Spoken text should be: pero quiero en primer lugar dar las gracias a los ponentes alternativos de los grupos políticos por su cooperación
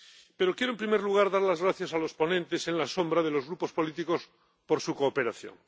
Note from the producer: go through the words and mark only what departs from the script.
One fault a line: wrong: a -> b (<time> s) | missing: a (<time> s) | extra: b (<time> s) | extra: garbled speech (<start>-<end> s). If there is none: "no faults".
no faults